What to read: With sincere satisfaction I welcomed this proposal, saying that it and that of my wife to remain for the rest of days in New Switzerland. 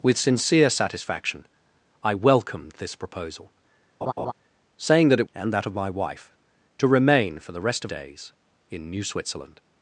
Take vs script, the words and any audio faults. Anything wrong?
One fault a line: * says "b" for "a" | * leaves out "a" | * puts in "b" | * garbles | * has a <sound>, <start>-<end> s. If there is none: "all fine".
* has a laugh, 4.0-4.3 s